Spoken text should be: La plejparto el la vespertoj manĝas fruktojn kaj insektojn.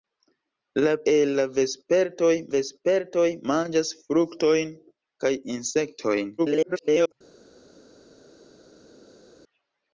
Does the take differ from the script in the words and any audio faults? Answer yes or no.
yes